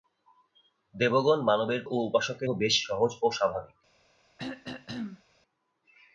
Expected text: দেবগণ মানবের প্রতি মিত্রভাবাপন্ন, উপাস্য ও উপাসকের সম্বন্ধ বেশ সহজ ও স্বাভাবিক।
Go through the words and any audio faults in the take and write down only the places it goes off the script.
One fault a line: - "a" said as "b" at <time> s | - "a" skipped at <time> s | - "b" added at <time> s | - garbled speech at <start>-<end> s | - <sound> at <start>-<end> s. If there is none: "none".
- "প্রতি মিত্রভাবাপন্ন উপাস্য" skipped at 1.8 s
- "সম্বন্ধ" skipped at 2.5 s
- throat clearing at 4.4-5.2 s